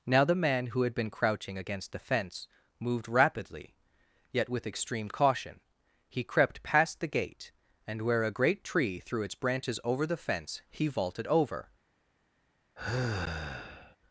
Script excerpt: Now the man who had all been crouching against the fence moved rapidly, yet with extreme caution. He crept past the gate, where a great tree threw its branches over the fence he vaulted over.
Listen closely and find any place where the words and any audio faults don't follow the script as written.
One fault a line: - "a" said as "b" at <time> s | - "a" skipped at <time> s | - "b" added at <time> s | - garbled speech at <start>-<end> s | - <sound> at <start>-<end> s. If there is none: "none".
- "all" skipped at 0.9 s
- "and" added at 7.8 s
- sigh at 12.8-14.0 s